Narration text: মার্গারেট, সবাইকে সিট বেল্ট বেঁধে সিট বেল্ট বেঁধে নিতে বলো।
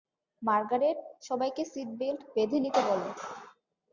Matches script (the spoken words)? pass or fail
fail